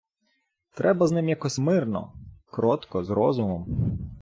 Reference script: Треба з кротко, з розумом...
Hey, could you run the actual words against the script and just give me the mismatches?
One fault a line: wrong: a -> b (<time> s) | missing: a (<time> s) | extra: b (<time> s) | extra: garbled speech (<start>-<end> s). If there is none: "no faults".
extra: ним якось мирно (1.1 s)